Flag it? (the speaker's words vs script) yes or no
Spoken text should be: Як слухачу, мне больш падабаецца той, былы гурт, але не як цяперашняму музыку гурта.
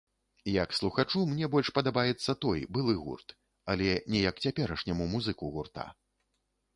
no